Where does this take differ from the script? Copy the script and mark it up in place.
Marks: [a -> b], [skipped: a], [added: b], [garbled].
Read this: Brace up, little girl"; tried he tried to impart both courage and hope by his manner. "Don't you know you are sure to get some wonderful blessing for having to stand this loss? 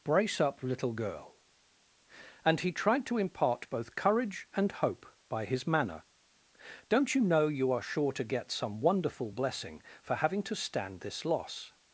Brace up, little girl"; [tried -> and] he tried to impart both courage and hope by his manner. "Don't you know you are sure to get some wonderful blessing for having to stand this loss?